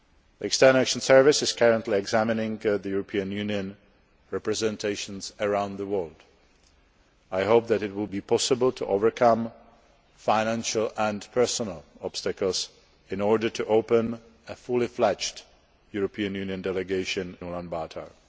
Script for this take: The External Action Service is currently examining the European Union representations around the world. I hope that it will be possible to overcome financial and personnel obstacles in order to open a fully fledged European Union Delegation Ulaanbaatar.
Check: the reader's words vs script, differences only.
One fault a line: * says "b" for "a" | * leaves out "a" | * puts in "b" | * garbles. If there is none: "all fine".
all fine